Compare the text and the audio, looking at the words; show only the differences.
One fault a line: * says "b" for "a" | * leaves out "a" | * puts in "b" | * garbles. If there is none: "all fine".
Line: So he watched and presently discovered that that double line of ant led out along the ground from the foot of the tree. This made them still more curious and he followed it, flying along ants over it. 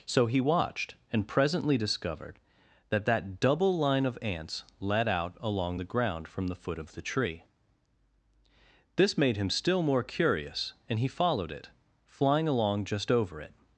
* says "ants" for "ant"
* says "him" for "them"
* says "just" for "ants"